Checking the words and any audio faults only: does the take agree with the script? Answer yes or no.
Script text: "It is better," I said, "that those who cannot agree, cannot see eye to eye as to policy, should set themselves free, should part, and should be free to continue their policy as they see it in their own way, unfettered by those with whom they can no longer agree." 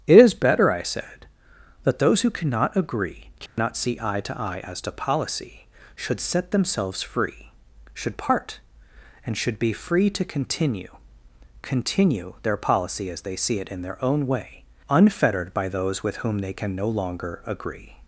no